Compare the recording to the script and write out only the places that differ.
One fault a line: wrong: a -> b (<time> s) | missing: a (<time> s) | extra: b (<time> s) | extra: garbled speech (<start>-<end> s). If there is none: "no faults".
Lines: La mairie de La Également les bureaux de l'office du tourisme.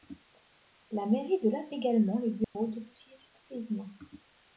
no faults